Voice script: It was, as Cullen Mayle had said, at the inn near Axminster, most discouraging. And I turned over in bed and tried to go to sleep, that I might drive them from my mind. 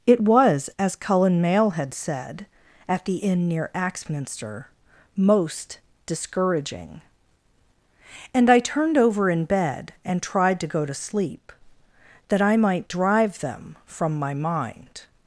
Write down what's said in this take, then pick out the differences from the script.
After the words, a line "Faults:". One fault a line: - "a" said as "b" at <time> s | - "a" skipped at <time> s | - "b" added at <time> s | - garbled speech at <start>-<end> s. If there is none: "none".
It was, as Cullen Mayle had said, at the inn near Axminster, most discouraging. And I turned over in bed and tried to go to sleep, that I might drive them from my mind.
Faults:
none